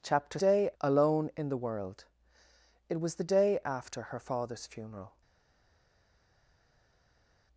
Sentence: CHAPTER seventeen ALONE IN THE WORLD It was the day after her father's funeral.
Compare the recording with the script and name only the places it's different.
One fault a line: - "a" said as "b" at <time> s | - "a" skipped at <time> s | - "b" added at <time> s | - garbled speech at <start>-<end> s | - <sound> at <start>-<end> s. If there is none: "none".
- "seventeen" said as "day" at 0.4 s